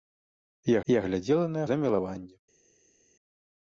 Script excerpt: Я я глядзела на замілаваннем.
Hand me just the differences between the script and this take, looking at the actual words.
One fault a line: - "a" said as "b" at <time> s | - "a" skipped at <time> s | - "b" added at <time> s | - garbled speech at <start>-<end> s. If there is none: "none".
none